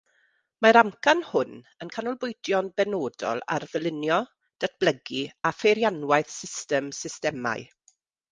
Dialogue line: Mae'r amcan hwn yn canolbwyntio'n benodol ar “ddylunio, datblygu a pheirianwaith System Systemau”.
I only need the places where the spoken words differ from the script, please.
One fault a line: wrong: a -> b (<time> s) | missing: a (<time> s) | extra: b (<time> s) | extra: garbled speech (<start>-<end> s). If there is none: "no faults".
no faults